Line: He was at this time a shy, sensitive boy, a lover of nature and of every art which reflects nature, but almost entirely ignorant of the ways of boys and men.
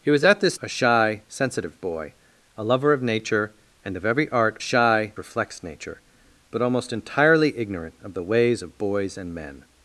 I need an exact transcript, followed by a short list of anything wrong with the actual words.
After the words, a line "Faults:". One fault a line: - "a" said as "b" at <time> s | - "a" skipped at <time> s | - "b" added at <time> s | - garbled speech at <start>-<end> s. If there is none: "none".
He was at this a shy, sensitive boy, a lover of nature and of every art shy reflects nature, but almost entirely ignorant of the ways of boys and men.
Faults:
- "time" skipped at 0.6 s
- "which" said as "shy" at 4.6 s